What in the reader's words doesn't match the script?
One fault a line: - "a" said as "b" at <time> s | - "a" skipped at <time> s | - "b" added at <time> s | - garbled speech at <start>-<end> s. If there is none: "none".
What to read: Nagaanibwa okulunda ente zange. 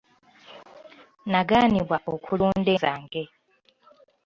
- "ente" skipped at 2.7 s